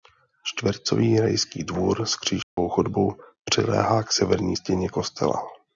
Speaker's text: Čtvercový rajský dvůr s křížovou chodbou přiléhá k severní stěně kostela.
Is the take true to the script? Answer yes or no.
yes